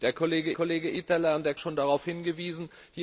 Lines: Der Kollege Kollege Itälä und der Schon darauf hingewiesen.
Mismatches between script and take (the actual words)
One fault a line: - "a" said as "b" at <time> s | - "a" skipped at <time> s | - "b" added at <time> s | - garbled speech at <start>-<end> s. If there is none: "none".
none